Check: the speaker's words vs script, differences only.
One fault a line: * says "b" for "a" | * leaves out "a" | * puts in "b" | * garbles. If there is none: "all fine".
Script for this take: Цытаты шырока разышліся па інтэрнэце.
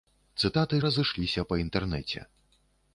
* leaves out "шырока"